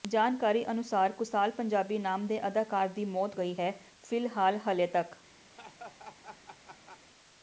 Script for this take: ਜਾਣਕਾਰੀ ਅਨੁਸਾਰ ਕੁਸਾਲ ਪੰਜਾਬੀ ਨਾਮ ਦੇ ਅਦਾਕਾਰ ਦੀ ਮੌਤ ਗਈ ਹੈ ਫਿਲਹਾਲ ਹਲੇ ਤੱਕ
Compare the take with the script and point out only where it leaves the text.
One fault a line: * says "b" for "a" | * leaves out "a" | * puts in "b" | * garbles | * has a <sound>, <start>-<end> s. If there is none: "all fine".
* has a laugh, 5.5-7.0 s